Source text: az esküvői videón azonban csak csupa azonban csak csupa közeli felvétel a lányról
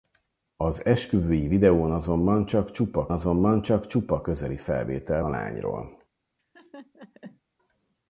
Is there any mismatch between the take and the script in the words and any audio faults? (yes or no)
yes